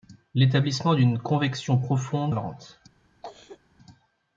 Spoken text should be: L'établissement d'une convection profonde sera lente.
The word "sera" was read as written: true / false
false